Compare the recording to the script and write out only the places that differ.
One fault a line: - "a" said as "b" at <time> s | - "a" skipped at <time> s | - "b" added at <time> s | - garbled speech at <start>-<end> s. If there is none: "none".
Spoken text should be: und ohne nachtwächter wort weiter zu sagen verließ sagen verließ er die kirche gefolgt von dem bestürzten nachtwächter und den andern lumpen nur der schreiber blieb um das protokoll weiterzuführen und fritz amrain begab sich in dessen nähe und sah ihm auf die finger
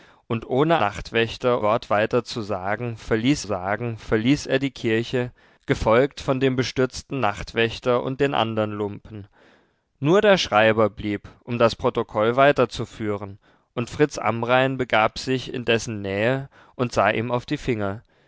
none